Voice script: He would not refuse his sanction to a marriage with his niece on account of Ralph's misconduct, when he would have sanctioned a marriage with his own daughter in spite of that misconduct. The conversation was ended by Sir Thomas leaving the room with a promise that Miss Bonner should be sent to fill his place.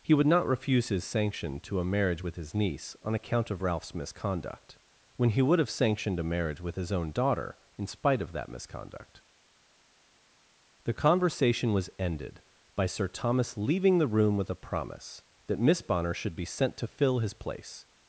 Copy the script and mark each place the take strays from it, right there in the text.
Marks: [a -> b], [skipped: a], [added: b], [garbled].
He would not refuse his sanction to a marriage with his niece on account of Ralph's misconduct, when he would have sanctioned a marriage with his own daughter in spite of that misconduct. The conversation was ended by Sir Thomas leaving the room with a promise that Miss Bonner should be sent to fill his place.